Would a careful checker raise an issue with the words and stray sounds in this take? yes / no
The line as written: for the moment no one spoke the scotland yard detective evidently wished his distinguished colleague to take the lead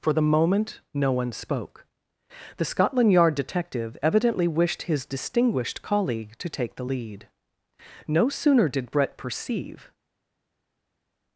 yes